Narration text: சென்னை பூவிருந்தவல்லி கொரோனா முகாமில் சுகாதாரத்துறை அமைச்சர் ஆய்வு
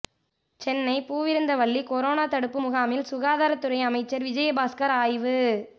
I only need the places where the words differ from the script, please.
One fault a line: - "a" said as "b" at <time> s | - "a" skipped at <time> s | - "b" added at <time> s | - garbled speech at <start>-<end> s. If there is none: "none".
- "தடுப்பு" added at 2.2 s
- "விஜயபாஸ்கர்" added at 4.3 s